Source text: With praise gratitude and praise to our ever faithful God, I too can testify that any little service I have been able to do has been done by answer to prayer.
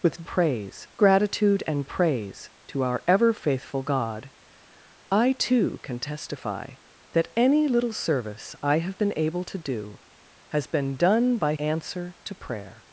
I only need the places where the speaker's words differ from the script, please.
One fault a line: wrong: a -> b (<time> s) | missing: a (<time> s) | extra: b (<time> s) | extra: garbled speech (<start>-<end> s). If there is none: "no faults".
no faults